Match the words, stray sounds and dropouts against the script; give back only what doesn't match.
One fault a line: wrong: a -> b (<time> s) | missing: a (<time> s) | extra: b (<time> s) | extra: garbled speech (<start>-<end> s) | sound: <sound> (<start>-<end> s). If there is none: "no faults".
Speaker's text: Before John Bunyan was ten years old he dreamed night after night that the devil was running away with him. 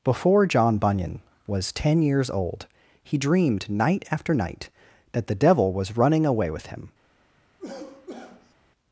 sound: cough (7.6-8.5 s)